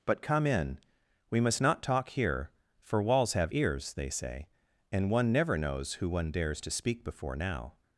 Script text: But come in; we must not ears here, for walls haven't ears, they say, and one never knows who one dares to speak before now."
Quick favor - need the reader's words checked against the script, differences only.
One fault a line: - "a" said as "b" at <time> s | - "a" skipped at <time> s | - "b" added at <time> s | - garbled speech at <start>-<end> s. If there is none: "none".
- "ears" said as "talk" at 1.8 s
- "haven't" said as "have" at 3.3 s